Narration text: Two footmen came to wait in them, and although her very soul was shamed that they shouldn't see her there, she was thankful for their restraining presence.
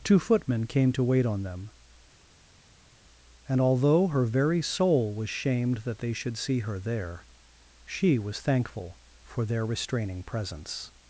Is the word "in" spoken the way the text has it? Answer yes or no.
no